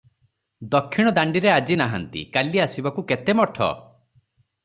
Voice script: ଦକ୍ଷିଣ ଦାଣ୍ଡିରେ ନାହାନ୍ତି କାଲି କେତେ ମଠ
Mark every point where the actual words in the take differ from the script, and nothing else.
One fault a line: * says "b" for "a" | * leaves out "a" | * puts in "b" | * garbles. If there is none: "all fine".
* puts in "ଆଜି"
* puts in "ଆସିବାକୁ"